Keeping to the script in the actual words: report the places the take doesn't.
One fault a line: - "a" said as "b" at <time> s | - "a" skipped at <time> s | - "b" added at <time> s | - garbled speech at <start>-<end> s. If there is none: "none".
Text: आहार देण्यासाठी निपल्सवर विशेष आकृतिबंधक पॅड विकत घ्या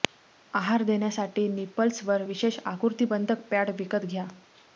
none